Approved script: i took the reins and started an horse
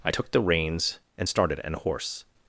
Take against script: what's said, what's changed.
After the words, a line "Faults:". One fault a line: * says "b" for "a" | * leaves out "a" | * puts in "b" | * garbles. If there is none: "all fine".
i took the reins and started an horse
Faults:
all fine